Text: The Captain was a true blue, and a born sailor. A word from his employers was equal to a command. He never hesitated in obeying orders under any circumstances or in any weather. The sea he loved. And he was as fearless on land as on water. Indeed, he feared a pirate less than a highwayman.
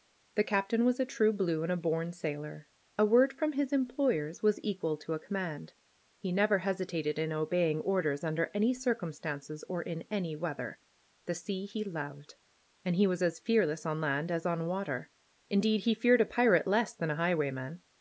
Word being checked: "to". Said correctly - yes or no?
yes